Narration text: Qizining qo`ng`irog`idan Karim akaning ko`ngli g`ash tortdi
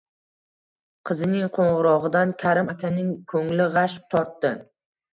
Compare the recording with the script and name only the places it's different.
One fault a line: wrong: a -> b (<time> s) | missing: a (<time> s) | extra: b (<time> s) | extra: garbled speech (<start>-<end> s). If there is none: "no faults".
no faults